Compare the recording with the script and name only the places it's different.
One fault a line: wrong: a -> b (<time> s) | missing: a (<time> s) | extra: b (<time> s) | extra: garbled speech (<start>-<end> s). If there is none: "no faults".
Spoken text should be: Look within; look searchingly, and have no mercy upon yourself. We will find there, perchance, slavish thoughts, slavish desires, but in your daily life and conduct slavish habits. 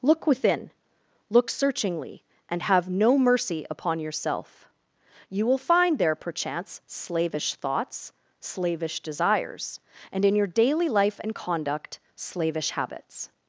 wrong: We -> You (5.3 s)
wrong: but -> and (10.1 s)